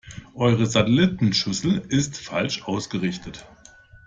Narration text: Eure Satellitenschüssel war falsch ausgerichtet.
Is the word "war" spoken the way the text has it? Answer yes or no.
no